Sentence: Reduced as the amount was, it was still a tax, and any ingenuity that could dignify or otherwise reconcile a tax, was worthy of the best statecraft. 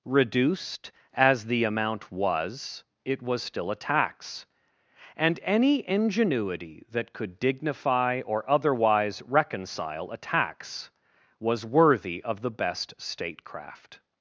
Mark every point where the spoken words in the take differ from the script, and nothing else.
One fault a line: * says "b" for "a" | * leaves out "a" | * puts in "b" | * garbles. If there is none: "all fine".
all fine